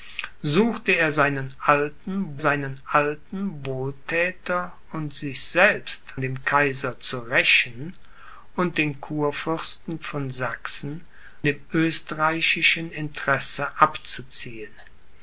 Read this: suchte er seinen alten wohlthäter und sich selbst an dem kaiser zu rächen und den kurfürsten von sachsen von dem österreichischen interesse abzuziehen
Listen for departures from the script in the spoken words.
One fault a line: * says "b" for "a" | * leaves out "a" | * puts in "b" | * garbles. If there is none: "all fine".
* puts in "seinen alten"
* leaves out "an"
* leaves out "von"